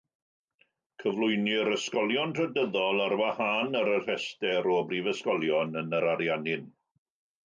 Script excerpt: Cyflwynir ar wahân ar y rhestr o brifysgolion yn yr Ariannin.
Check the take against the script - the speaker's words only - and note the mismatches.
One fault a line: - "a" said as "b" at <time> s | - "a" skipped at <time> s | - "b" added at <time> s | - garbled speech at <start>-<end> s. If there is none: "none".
- "ysgolion trydyddol" added at 1.7 s